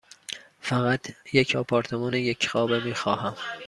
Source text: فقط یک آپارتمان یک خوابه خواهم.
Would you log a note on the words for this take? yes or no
yes